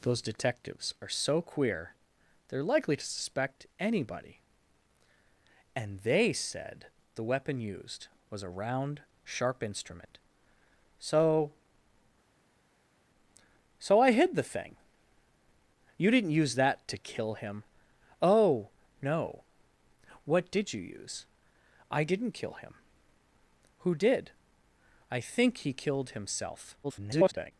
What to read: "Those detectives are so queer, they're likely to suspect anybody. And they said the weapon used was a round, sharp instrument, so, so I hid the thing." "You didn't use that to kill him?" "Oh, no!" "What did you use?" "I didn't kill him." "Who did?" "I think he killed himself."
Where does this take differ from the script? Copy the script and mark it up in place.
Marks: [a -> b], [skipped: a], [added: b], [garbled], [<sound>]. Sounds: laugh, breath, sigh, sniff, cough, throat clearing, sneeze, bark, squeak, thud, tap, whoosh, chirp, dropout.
"Those detectives are so queer, they're likely to suspect anybody. And they said the weapon used was a round, sharp instrument, so, so I hid the thing." "You didn't use that to kill him?" "Oh, no!" "What did you use?" "I didn't kill him." "Who did?" "I think he killed himself." [garbled]